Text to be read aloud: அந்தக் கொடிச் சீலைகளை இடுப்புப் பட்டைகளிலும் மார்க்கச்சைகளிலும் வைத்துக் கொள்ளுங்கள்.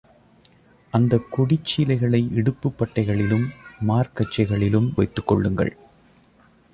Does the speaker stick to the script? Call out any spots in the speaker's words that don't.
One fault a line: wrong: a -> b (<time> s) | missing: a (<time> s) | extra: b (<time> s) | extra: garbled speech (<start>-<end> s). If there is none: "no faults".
no faults